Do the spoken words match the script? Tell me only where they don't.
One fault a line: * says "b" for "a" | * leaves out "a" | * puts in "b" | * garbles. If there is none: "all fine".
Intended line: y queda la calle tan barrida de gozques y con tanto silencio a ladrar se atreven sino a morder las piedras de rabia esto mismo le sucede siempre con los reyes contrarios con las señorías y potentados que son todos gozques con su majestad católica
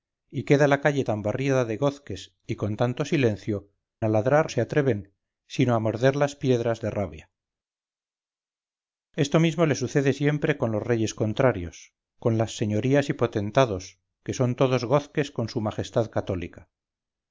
all fine